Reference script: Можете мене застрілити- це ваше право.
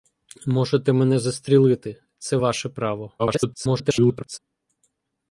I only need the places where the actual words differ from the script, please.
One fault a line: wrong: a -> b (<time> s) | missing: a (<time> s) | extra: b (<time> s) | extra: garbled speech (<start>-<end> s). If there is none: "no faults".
extra: garbled speech (3.2-4.4 s)